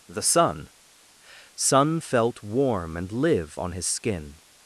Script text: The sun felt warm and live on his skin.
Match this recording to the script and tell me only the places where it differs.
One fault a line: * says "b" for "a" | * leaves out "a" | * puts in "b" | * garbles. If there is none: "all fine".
* puts in "sun"